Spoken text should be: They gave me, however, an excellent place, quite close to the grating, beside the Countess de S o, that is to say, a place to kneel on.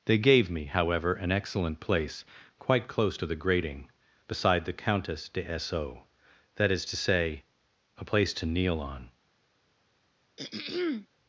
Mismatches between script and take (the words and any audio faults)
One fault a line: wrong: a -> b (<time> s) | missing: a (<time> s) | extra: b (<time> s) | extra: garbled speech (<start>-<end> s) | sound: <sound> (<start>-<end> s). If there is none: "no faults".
sound: throat clearing (10.4-11.1 s)